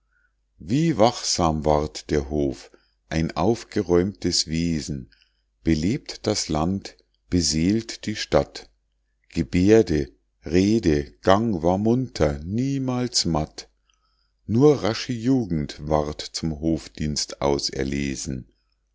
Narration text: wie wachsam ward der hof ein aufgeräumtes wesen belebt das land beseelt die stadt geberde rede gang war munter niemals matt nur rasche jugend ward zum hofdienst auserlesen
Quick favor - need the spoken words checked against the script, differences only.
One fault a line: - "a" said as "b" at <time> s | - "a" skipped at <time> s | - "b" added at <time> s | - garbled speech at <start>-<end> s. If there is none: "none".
none